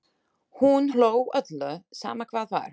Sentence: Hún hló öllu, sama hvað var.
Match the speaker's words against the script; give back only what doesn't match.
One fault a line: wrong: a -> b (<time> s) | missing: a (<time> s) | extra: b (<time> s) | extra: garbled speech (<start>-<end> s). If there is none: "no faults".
no faults